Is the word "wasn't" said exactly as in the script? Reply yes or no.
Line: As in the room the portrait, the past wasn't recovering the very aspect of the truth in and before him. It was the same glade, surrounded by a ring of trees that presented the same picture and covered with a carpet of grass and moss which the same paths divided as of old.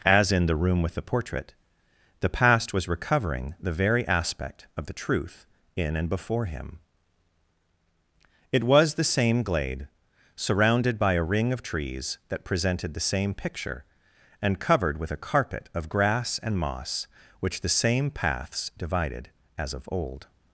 no